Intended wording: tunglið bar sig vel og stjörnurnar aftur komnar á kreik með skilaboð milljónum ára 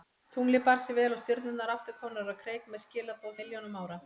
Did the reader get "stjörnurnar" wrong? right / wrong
right